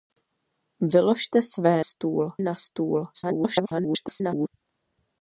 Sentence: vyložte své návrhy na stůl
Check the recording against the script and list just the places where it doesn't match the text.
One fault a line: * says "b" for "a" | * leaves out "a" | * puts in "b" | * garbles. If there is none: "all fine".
* says "stůl" for "návrhy"
* garbles